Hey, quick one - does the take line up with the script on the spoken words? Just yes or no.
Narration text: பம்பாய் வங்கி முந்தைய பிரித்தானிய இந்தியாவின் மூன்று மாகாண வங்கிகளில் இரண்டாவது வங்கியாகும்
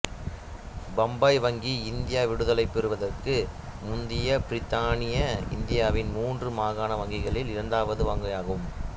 no